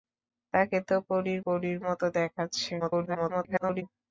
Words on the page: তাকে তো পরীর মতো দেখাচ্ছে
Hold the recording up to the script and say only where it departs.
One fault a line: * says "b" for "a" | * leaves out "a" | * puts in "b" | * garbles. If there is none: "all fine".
* puts in "পরীর"
* garbles